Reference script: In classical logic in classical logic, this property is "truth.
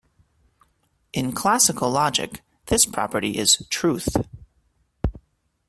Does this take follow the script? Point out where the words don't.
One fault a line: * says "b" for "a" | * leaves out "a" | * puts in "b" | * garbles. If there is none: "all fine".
* leaves out "in classical logic"